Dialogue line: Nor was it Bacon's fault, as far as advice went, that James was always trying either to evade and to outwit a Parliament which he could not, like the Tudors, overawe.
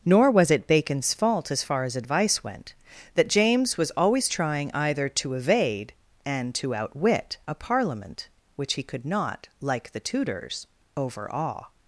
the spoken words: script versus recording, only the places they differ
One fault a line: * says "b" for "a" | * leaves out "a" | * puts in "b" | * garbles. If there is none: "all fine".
all fine